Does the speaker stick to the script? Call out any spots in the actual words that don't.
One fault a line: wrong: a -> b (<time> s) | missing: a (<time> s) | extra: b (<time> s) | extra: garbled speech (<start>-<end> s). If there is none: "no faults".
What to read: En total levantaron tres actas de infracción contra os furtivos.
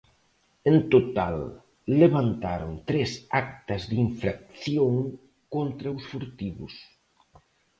no faults